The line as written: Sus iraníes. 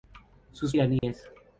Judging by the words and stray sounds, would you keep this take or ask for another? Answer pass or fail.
fail